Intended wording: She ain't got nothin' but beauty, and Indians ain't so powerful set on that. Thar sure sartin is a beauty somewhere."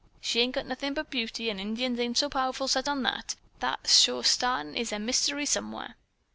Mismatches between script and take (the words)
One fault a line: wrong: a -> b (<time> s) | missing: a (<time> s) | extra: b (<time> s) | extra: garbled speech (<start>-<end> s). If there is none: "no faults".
wrong: beauty -> mystery (5.0 s)